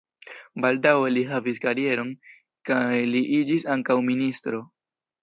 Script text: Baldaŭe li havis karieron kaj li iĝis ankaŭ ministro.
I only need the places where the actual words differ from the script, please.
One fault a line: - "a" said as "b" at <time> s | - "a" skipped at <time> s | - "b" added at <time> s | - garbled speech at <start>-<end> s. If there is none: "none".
none